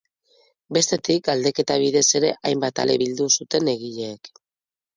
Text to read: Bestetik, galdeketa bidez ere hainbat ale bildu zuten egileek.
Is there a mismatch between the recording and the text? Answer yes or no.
no